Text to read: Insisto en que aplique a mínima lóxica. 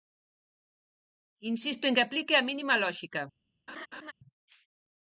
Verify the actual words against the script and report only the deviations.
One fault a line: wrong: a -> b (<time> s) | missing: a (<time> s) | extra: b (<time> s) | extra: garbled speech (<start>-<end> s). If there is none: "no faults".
no faults